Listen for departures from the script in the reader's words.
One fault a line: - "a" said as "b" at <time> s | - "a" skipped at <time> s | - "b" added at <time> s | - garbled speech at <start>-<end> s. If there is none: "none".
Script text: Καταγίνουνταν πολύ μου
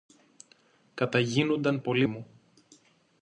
none